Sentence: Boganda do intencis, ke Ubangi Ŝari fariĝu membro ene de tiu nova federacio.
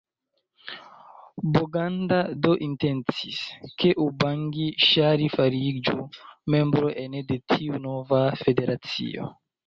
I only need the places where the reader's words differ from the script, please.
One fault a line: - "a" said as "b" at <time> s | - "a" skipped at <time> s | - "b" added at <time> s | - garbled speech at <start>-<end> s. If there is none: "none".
none